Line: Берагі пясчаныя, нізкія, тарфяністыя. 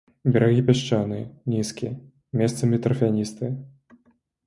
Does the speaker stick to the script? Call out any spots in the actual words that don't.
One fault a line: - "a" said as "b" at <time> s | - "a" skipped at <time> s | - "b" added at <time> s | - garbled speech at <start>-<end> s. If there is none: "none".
- "месцамі" added at 2.4 s